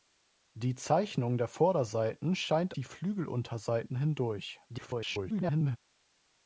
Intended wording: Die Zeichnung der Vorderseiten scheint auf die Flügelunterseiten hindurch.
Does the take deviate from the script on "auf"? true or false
true